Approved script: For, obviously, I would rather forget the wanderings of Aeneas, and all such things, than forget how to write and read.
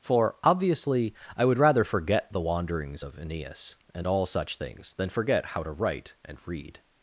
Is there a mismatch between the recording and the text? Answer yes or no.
no